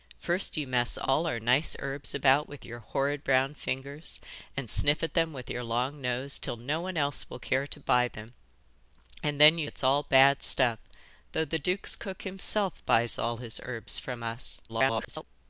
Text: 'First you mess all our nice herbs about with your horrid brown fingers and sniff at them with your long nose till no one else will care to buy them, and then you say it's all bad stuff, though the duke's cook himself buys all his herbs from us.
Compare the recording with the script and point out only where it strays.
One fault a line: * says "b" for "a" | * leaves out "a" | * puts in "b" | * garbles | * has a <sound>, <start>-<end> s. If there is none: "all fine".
* leaves out "say"
* garbles